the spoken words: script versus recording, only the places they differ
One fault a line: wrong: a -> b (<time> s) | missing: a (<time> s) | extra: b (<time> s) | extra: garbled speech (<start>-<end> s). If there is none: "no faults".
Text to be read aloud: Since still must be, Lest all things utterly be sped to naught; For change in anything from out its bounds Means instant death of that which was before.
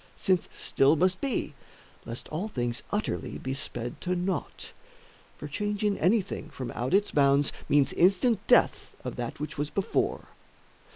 no faults